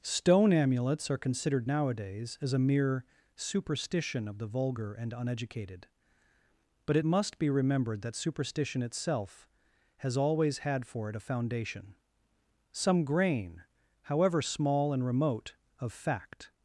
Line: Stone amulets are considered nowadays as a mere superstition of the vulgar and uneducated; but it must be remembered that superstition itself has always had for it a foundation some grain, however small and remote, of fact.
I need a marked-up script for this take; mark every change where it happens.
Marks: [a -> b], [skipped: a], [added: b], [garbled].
Stone amulets are considered nowadays as a mere superstition of the vulgar and uneducated; but it must be remembered that superstition itself has always had for it a foundation some grain, however small and remote, of fact.